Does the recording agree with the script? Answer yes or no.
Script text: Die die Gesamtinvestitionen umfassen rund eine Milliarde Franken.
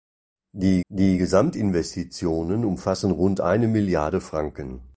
yes